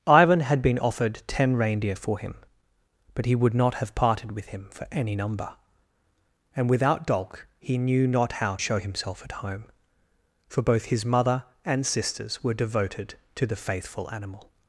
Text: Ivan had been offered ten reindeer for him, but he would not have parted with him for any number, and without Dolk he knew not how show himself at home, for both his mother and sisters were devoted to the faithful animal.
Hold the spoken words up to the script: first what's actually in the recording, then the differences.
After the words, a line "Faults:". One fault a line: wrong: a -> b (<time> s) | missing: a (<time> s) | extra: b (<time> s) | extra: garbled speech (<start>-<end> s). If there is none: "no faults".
Ivan had been offered ten reindeer for him, but he would not have parted with him for any number, and without Dolk he knew not how show himself at home, for both his mother and sisters were devoted to the faithful animal.
Faults:
no faults